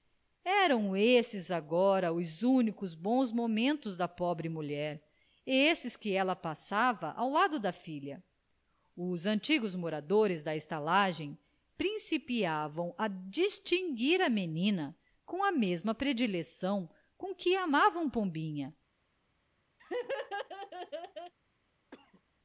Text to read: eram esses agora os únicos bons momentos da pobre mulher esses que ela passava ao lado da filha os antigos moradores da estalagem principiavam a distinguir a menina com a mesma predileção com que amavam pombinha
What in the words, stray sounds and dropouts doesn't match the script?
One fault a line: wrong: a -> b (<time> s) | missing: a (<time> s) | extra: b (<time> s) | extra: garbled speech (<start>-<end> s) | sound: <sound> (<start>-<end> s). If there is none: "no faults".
sound: laugh (19.8-21.3 s)
sound: cough (21.9-22.2 s)